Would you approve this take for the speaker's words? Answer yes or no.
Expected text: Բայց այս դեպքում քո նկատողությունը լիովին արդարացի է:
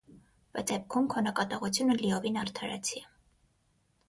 no